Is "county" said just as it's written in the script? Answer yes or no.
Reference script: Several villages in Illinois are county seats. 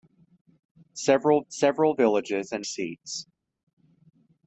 no